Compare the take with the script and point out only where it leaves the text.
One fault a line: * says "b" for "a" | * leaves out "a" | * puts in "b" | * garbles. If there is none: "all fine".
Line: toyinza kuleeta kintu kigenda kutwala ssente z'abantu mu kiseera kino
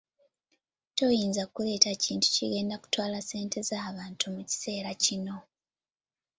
all fine